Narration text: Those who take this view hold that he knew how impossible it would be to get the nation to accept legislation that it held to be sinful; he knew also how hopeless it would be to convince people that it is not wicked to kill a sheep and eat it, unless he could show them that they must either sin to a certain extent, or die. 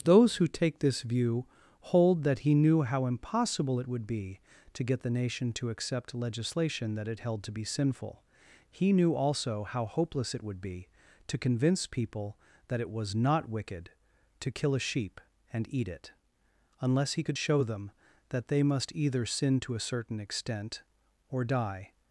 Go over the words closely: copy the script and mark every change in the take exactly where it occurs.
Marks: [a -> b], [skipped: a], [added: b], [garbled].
Those who take this view hold that he knew how impossible it would be to get the nation to accept legislation that it held to be sinful; he knew also how hopeless it would be to convince people that it [is -> was] not wicked to kill a sheep and eat it, unless he could show them that they must either sin to a certain extent, or die.